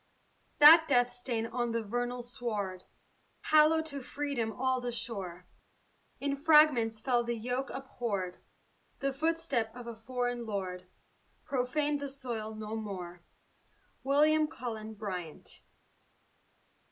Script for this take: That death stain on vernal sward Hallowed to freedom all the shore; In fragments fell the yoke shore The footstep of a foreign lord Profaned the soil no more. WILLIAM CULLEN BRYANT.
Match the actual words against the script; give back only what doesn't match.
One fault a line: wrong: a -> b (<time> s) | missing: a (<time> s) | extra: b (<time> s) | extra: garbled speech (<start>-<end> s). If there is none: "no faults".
extra: the (1.7 s)
wrong: shore -> abhorred (7.7 s)